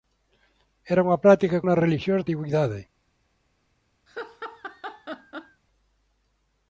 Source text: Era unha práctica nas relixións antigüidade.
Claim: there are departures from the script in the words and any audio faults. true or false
true